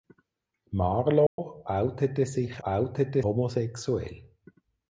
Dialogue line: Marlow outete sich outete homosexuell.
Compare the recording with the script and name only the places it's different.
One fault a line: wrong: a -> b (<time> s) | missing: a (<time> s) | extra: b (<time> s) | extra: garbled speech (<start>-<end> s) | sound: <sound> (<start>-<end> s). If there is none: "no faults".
sound: dropout (1.3-1.4 s)